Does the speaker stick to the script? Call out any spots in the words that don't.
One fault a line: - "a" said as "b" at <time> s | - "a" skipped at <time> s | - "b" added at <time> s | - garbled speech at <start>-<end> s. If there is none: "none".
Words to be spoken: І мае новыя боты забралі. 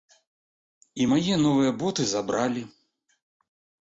none